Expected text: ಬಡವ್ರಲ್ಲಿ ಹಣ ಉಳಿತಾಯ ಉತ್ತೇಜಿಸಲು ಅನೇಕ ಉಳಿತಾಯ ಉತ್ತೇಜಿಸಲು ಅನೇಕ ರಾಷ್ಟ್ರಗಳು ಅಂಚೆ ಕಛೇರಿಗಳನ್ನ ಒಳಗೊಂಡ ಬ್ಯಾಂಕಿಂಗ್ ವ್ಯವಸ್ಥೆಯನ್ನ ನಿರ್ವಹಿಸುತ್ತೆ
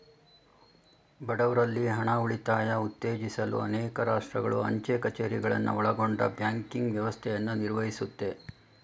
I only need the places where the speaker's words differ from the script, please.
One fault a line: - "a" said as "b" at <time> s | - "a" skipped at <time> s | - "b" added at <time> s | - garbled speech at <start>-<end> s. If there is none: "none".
- "ಉಳಿತಾಯ ಉತ್ತೇಜಿಸಲು ಅನೇಕ" skipped at 4.0 s